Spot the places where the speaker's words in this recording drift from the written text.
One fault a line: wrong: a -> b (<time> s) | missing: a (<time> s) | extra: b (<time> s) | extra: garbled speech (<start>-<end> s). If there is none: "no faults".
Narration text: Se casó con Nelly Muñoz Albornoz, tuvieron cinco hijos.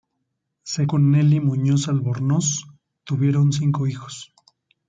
missing: casó (0.9 s)